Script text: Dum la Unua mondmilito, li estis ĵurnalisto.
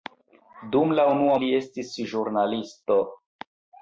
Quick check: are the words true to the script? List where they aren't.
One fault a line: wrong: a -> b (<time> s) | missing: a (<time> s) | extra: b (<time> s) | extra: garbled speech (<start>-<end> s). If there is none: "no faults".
missing: mondmilito (1.4 s)